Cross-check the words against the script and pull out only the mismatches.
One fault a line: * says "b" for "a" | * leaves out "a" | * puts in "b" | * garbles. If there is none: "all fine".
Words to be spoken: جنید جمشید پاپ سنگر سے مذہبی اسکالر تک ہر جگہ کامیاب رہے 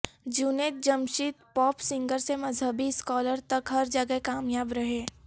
all fine